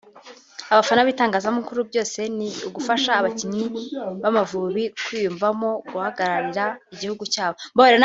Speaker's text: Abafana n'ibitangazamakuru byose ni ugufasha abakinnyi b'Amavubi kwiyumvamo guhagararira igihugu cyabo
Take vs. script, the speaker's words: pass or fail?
pass